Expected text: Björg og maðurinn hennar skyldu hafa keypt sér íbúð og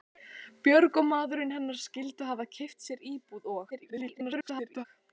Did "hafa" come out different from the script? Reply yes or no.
no